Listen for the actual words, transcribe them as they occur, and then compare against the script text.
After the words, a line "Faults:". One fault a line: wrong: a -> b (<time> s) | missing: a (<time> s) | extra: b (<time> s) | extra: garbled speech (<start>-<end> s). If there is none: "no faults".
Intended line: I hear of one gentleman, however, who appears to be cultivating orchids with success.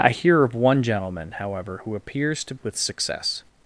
I hear of one gentleman, however, who appears to with success.
Faults:
missing: be cultivating orchids (2.5 s)